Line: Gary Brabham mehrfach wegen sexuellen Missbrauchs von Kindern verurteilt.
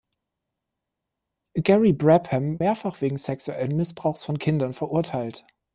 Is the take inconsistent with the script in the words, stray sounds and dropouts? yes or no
no